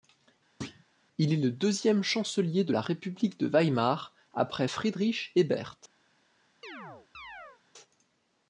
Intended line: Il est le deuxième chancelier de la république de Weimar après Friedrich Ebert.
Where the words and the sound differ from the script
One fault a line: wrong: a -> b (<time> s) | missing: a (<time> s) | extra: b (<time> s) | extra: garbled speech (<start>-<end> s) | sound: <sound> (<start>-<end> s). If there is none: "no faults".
sound: thud (0.6-0.8 s)
sound: chirp (6.6-7.6 s)